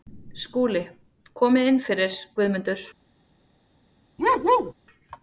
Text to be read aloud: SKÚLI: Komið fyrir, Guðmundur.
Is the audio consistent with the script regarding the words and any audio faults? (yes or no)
no